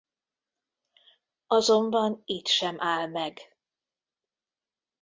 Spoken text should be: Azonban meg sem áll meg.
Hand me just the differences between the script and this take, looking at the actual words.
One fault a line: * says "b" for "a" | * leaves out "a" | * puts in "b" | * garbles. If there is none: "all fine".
* says "itt" for "meg"